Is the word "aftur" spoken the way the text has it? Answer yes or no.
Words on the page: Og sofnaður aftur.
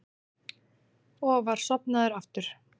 yes